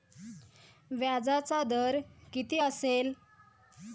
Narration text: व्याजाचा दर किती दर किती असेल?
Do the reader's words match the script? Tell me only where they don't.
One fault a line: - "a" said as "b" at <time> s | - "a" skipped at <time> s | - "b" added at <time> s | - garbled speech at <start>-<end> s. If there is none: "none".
- "दर किती" skipped at 2.6 s